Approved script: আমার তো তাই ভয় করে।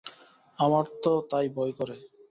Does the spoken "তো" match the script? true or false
true